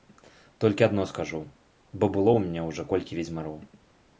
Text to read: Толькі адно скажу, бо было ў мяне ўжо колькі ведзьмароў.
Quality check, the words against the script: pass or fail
pass